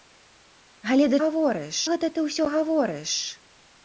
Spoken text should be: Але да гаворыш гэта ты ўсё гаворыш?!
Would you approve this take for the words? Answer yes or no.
yes